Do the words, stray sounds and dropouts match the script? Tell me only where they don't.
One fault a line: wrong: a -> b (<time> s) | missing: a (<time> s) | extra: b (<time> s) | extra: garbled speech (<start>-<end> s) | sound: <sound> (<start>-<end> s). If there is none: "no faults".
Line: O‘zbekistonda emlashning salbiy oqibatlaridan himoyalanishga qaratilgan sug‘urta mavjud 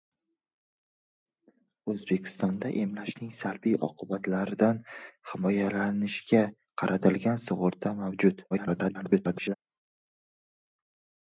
extra: garbled speech (8.5-9.5 s)